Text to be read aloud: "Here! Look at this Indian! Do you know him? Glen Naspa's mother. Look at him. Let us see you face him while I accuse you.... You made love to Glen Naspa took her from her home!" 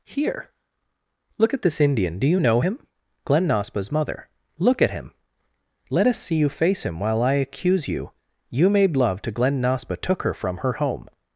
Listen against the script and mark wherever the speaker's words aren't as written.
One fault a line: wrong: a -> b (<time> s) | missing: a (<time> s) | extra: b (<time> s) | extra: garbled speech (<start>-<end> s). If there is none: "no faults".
no faults